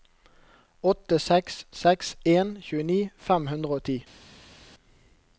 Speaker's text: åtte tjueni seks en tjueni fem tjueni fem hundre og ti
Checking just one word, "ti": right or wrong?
right